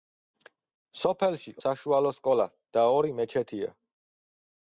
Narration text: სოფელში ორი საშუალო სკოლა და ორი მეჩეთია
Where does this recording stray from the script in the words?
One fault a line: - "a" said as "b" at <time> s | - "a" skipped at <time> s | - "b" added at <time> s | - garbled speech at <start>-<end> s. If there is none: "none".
- "ორი" skipped at 1.5 s